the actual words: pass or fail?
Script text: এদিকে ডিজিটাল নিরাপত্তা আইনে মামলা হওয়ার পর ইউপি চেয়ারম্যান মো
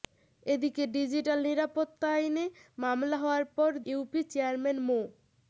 pass